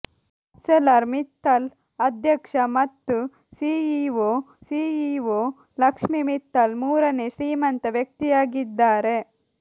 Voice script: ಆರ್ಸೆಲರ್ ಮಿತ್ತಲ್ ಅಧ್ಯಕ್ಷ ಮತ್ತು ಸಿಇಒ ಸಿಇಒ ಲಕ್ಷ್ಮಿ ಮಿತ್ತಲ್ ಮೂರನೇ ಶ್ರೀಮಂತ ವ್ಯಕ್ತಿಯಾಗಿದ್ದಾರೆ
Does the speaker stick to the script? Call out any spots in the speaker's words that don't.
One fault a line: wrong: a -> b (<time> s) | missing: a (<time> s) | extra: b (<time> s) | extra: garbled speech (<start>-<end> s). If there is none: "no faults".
no faults